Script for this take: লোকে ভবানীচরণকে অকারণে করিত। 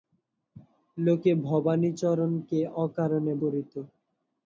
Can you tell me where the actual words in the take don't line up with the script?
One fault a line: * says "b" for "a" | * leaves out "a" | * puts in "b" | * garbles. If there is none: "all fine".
all fine